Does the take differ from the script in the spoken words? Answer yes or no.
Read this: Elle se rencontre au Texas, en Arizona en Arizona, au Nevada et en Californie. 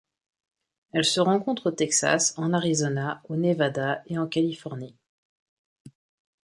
yes